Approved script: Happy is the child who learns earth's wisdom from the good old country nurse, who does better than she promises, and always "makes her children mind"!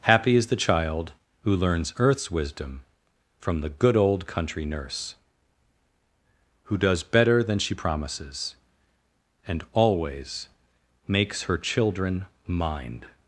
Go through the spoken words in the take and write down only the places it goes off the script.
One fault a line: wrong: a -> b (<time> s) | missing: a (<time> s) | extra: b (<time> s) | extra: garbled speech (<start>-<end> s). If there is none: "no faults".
no faults